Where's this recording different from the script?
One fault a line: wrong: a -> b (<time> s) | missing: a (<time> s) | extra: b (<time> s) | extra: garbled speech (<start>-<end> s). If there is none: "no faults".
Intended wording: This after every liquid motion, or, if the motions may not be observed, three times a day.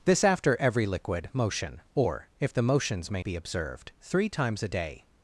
missing: not (3.2 s)